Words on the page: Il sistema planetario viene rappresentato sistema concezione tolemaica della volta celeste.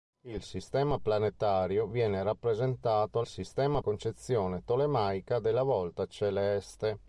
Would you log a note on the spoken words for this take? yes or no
no